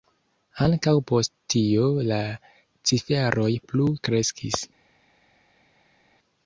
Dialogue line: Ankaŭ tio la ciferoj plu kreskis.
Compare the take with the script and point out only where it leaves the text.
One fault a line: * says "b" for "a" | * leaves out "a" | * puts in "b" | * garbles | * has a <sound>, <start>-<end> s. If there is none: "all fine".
* puts in "post"